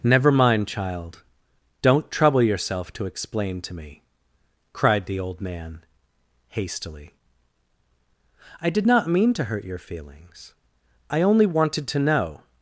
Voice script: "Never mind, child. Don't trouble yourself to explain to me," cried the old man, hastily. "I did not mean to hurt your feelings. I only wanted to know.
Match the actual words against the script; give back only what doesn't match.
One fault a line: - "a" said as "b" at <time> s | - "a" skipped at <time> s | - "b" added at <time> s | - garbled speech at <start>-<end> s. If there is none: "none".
none